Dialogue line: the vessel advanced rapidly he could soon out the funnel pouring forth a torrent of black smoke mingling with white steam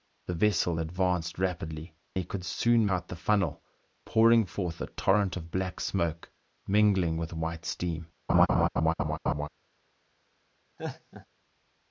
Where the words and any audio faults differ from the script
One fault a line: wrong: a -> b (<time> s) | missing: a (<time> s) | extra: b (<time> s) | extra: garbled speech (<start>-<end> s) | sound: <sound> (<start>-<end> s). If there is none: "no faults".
sound: laugh (8.3-9.5 s)
sound: laugh (10.8-11.3 s)